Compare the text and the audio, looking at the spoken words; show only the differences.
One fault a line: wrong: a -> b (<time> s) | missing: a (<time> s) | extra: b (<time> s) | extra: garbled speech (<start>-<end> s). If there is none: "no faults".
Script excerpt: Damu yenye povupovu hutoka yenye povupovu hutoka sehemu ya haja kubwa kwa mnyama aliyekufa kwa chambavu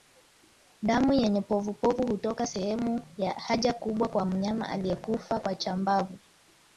missing: yenye povupovu hutoka (2.5 s)